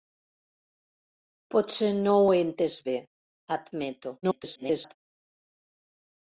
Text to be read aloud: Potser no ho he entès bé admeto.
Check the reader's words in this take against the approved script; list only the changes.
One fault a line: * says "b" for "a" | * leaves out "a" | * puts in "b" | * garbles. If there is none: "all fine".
* garbles